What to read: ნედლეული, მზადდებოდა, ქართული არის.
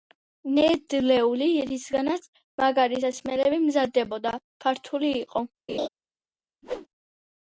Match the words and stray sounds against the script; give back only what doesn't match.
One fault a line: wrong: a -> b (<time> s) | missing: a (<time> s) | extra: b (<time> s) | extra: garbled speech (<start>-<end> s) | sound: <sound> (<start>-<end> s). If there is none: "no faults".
extra: რისგანაც მაგარი სასმელები (1.7 s)
wrong: არის -> იყო (5.2 s)
sound: laugh (5.7-5.9 s)
sound: whoosh (6.6-6.9 s)